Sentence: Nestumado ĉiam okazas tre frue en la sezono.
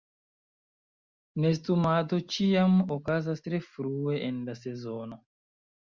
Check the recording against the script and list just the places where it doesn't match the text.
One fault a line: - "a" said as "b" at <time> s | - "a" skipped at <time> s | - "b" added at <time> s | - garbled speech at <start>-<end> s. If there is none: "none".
none